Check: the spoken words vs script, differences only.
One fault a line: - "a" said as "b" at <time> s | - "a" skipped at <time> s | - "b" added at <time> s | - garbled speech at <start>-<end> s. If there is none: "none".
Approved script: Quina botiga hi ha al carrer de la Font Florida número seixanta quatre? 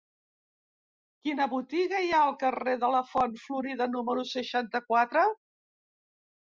none